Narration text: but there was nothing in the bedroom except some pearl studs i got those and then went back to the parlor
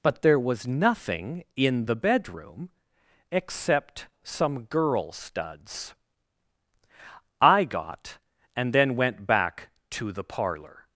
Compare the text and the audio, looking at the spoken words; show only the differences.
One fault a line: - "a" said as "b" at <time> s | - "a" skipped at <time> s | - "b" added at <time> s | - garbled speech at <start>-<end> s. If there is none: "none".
- "pearl" said as "girl" at 4.6 s
- "those" skipped at 8.2 s